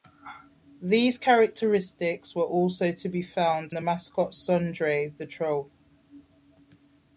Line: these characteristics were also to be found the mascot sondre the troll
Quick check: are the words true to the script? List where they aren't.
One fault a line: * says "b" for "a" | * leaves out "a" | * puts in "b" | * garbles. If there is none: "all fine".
all fine